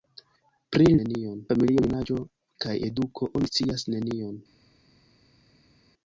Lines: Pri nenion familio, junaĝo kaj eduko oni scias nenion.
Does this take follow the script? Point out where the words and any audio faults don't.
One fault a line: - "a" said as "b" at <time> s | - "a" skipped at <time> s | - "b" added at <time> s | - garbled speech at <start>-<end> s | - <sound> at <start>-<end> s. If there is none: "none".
none